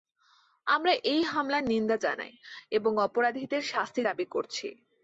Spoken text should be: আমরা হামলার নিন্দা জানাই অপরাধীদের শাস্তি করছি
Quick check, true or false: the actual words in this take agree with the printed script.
false